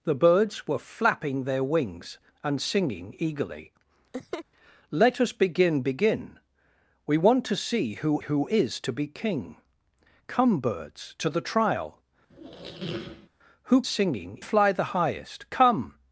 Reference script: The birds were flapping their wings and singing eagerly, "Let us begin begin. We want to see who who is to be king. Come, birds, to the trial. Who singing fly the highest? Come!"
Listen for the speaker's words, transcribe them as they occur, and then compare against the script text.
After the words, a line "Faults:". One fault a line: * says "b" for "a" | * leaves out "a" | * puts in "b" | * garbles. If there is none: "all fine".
The birds were flapping their wings and singing eagerly, "Let us begin begin. We want to see who who is to be king. Come, birds, to the trial. Who singing fly the highest? Come!"
Faults:
all fine